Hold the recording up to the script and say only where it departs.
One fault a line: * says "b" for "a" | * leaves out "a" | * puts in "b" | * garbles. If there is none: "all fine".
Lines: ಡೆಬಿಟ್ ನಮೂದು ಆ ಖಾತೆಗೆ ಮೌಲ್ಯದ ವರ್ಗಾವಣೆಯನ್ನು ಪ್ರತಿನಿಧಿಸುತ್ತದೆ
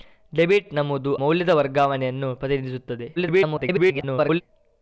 * leaves out "ಆ ಖಾತೆಗೆ"
* garbles